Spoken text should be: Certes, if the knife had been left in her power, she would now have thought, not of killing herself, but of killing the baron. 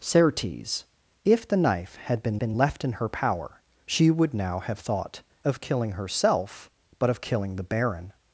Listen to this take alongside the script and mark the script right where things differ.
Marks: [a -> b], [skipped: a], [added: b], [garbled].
Certes, if the knife had been [added: been] left in her power, she would now have thought, [skipped: not] of killing herself, but of killing the baron.